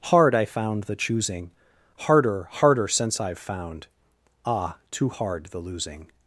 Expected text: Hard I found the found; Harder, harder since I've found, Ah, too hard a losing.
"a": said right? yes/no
no